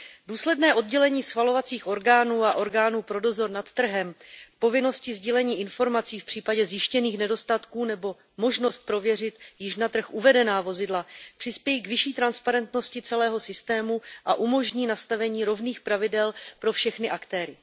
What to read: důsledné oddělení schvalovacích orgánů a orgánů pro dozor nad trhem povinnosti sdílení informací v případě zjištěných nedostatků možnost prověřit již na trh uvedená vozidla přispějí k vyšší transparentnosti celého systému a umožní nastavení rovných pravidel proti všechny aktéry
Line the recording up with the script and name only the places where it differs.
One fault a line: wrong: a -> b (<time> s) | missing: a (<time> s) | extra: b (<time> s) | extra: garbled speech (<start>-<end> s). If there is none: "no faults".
extra: nebo (7.8 s)
wrong: proti -> pro (16.6 s)